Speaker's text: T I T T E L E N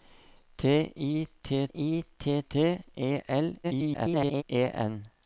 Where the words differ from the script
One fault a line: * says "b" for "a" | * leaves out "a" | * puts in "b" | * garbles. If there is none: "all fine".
* puts in "I T"
* garbles